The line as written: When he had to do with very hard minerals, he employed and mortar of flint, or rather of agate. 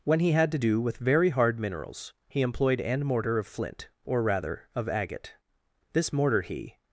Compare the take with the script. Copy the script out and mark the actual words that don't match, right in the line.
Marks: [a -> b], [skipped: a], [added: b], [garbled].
When he had to do with very hard minerals, he employed and mortar of flint, or rather of agate. [added: This mortar he]